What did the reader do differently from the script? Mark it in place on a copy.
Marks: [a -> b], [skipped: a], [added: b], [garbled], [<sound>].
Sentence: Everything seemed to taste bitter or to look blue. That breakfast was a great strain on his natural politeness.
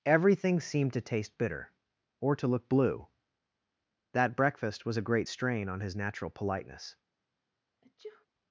Everything seemed to taste bitter or to look blue. That breakfast was a great strain on his natural politeness. [sneeze]